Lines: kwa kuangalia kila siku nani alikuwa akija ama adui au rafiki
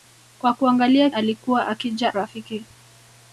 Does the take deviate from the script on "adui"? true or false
true